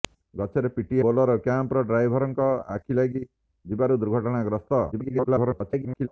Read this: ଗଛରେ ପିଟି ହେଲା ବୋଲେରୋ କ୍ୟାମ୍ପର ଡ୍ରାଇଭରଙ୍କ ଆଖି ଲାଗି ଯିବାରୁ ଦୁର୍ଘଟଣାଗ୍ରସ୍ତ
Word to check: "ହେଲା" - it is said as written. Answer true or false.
false